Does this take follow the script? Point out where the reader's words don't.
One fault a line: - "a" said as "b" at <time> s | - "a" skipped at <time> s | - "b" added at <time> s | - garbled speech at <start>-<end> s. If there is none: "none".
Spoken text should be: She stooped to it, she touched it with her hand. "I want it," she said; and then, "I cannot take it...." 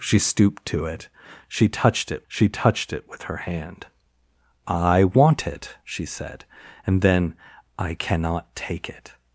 - "she touched it" added at 2.3 s